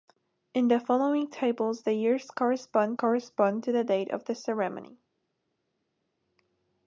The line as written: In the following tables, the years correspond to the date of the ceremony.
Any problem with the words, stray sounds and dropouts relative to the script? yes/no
yes